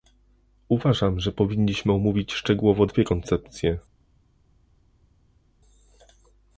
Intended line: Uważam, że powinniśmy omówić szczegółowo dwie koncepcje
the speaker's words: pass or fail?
pass